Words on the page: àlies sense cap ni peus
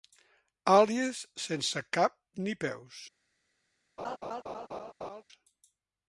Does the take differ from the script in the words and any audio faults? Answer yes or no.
yes